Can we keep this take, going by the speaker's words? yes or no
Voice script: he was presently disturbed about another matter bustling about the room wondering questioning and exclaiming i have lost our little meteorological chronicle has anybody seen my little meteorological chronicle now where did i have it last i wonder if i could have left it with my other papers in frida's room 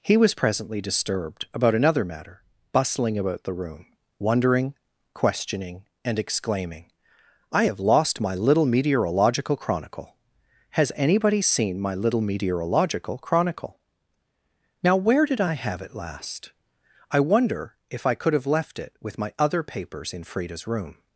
no